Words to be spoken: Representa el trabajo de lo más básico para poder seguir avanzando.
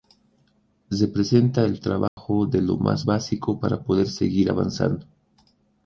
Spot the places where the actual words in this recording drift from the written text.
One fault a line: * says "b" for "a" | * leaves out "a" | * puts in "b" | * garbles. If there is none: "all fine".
all fine